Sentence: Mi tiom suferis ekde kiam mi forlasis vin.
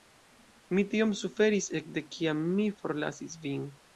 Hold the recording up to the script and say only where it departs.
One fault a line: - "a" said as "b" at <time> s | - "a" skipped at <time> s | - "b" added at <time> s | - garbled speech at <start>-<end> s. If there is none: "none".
none